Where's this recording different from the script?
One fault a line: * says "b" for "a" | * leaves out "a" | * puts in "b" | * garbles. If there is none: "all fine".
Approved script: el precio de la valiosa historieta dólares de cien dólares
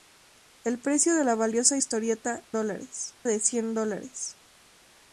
all fine